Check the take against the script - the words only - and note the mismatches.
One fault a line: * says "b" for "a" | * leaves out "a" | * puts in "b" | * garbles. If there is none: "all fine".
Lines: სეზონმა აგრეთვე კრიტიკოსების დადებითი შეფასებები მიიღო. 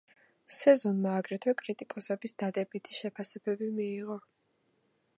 all fine